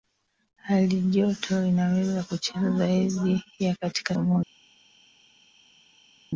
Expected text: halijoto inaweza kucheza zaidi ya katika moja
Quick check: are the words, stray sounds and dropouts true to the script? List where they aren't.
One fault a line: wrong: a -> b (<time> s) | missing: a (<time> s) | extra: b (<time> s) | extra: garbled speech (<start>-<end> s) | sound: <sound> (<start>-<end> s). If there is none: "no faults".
no faults